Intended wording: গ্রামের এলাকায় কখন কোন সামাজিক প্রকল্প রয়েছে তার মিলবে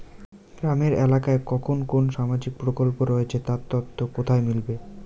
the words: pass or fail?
fail